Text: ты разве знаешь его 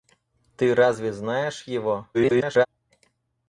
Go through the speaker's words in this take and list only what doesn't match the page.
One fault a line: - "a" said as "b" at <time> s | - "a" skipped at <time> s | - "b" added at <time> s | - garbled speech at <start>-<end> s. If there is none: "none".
- garbled speech at 2.1-2.7 s